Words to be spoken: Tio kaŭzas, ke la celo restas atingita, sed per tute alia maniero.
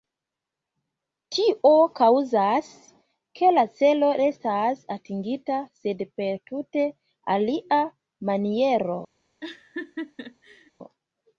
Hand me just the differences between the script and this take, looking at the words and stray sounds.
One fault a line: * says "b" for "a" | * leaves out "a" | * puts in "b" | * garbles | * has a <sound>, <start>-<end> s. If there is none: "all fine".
* has a laugh, 9.4-10.7 s